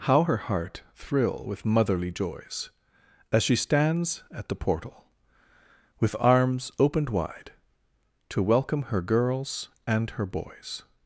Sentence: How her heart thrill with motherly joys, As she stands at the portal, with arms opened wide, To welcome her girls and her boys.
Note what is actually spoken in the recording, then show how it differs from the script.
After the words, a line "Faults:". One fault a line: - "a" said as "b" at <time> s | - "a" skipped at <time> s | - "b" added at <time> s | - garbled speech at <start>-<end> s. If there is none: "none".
How her heart thrill with motherly joys, As she stands at the portal, with arms opened wide, To welcome her girls and her boys.
Faults:
none